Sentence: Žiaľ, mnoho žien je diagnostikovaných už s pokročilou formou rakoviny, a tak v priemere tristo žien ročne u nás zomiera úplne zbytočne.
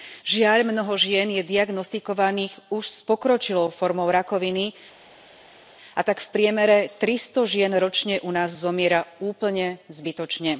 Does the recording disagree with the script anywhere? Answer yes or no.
no